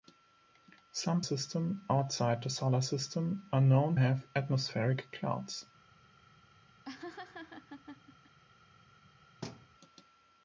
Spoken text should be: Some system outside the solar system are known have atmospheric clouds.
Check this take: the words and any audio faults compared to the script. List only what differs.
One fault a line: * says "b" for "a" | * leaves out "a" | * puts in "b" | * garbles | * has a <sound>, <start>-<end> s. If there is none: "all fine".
* has a laugh, 6.8-8.4 s
* has a thud, 9.4-9.7 s